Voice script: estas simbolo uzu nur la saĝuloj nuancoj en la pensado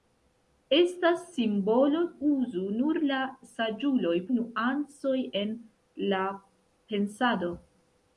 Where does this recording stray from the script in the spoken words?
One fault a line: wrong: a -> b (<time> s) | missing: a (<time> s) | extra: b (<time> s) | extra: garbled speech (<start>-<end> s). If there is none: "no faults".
no faults